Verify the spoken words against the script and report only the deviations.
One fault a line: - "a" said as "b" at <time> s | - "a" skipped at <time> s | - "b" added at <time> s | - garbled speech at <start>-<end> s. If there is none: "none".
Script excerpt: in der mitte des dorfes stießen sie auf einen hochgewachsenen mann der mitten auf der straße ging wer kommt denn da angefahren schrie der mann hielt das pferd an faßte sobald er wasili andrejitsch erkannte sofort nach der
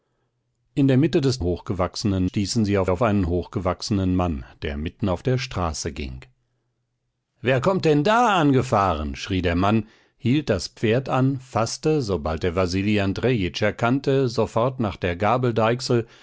- "dorfes" said as "hochgewachsenen" at 1.4 s
- "auf" added at 2.9 s